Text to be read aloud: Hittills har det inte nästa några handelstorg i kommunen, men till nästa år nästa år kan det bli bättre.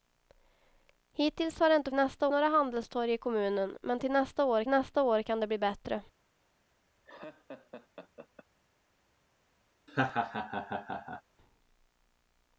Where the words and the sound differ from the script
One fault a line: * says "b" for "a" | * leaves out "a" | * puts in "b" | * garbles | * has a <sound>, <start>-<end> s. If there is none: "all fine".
* has a laugh, 7.0-8.5 s
* has a laugh, 9.9-11.2 s